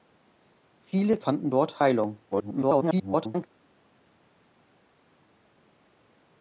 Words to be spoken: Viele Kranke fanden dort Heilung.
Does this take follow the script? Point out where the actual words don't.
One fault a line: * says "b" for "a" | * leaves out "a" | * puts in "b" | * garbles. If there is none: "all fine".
* leaves out "Kranke"
* garbles